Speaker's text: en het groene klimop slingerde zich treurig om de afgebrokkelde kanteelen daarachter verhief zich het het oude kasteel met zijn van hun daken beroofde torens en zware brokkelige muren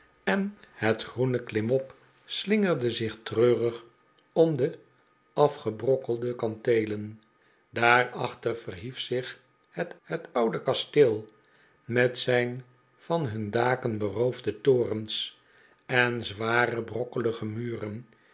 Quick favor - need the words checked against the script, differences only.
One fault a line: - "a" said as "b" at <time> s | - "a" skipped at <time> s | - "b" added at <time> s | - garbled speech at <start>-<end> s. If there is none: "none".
none